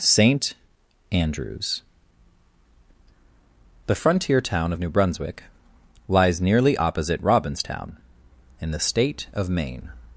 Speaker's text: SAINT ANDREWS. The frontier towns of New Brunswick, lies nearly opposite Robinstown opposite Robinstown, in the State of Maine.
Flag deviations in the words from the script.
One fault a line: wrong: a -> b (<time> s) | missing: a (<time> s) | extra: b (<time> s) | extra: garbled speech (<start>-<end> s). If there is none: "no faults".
wrong: towns -> town (4.4 s)
missing: opposite Robinstown (8.0 s)